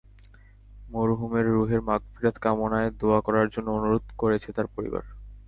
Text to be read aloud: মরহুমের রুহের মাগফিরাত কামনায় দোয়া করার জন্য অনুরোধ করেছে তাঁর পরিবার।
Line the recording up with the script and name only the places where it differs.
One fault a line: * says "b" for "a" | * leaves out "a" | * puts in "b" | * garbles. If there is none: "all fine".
all fine